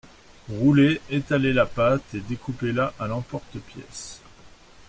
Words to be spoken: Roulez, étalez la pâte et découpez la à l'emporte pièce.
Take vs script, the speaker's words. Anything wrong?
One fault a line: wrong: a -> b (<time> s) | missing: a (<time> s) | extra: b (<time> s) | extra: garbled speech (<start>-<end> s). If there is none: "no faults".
no faults